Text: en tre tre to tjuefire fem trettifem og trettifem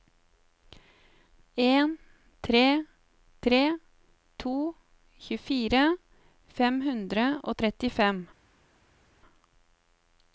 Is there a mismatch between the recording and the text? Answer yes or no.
yes